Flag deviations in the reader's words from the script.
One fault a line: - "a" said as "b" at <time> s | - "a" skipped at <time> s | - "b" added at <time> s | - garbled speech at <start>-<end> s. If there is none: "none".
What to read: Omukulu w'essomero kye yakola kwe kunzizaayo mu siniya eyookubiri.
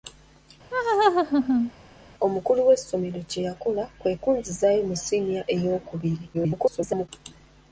- garbled speech at 6.3-7.1 s